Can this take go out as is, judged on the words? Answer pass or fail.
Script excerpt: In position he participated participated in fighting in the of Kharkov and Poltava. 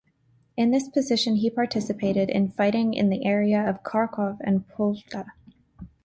fail